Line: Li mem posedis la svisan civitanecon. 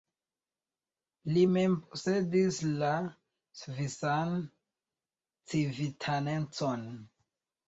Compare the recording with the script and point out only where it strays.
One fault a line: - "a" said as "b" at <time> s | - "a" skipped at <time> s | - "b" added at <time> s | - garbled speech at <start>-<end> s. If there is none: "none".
none